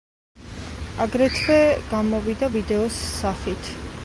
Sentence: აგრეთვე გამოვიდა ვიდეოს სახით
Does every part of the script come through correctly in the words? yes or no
yes